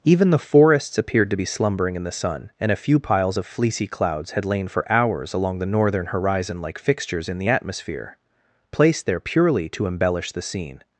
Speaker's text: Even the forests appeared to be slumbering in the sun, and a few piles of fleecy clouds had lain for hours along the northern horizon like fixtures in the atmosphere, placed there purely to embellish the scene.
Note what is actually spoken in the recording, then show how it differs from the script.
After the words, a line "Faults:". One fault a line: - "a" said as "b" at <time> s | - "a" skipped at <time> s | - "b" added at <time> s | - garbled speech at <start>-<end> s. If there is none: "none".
Even the forests appeared to be slumbering in the sun, and a few piles of fleecy clouds had lain for hours along the northern horizon like fixtures in the atmosphere, placed there purely to embellish the scene.
Faults:
none